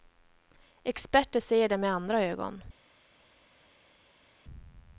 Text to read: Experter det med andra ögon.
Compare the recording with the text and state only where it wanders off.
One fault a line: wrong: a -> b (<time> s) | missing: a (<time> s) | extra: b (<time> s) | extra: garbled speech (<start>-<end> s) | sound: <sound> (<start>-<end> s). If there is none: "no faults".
extra: ser (1.4 s)